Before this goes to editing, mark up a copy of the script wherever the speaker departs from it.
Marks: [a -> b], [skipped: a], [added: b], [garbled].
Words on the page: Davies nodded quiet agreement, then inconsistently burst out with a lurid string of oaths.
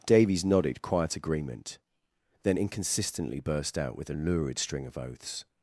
Davies nodded quiet agreement, then inconsistently burst out with a lurid string of oaths.